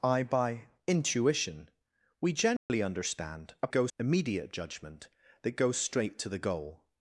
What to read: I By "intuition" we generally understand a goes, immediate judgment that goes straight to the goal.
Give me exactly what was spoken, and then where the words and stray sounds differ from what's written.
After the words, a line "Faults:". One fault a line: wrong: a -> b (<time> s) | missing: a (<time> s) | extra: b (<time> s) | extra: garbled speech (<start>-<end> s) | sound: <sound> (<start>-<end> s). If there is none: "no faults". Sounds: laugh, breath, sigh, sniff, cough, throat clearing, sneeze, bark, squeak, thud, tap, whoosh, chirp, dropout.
I By "intuition" we generally understand a goes, immediate judgment that goes straight to the goal.
Faults:
sound: dropout (2.6-2.7 s)